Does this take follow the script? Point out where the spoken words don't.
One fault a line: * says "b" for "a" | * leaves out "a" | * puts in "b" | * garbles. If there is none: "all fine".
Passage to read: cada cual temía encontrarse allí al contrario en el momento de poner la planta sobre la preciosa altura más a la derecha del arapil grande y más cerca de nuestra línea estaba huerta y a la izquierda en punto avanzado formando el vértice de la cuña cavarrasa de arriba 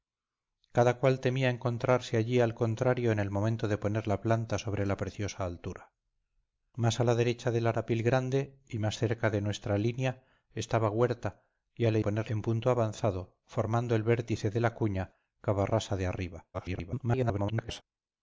* says "poner" for "izquierda"
* garbles